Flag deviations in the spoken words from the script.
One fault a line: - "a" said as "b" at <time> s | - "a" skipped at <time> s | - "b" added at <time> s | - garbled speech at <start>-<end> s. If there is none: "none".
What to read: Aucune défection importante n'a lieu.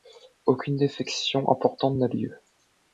none